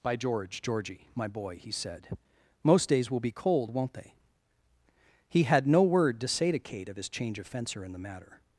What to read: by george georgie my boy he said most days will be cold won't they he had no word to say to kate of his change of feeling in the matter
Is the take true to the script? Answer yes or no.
no